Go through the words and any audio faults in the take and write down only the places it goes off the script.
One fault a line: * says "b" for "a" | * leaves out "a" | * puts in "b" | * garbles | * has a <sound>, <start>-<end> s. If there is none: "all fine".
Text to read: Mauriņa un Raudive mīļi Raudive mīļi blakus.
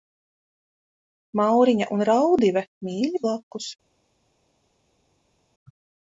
* leaves out "Raudive mīļi"